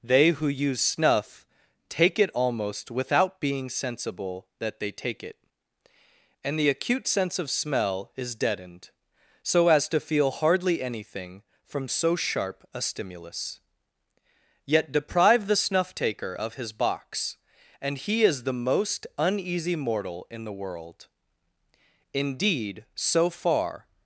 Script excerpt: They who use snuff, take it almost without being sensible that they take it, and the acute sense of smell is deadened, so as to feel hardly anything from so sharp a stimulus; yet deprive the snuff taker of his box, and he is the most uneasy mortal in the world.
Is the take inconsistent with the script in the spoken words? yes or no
yes